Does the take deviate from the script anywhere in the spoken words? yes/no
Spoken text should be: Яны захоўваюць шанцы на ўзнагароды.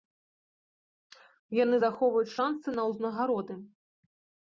no